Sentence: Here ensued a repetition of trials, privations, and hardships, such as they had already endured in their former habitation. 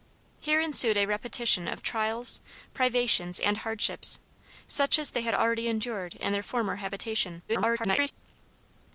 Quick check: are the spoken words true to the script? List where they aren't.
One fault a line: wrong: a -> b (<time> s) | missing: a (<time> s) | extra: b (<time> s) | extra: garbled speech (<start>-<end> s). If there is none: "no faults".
extra: garbled speech (7.5-8.1 s)